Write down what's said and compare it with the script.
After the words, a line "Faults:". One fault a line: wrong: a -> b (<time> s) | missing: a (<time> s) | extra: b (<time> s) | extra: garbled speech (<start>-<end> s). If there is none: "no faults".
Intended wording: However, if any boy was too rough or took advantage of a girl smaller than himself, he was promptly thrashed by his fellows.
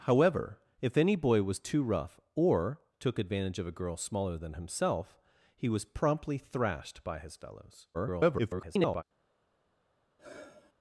However, if any boy was too rough or took advantage of a girl smaller than himself, he was promptly thrashed by his fellows. [garbled]
Faults:
extra: garbled speech (7.9-9.0 s)